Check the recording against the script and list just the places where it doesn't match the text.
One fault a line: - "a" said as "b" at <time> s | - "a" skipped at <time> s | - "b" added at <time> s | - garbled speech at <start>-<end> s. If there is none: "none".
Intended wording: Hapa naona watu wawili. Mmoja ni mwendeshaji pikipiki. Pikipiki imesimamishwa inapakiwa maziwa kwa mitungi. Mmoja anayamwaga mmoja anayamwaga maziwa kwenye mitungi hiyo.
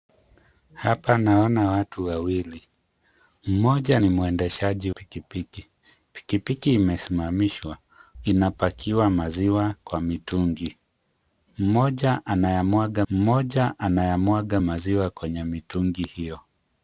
none